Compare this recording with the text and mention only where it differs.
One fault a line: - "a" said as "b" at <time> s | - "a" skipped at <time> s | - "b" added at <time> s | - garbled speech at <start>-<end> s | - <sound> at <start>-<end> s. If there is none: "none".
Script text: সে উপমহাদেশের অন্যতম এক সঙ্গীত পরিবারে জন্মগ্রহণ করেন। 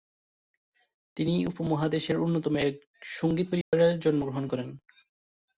- "সে" said as "তিনি" at 1.2 s
- dropout at 3.6-3.7 s